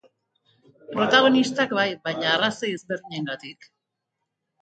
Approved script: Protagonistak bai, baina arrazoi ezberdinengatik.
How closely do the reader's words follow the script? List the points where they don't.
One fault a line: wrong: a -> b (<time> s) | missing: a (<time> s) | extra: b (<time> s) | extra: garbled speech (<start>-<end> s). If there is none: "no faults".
no faults